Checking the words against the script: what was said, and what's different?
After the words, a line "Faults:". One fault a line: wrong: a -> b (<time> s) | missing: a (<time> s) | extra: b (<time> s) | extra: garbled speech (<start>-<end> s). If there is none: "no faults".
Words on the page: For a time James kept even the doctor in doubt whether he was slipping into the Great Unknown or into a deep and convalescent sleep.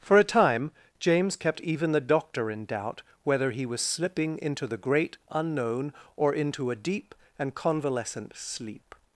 For a time James kept even the doctor in doubt whether he was slipping into the Great Unknown or into a deep and convalescent sleep.
Faults:
no faults